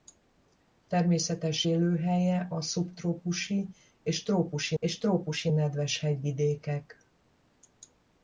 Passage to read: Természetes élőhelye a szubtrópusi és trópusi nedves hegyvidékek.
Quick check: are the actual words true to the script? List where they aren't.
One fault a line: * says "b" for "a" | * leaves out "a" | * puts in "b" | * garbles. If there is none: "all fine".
* puts in "és trópusi"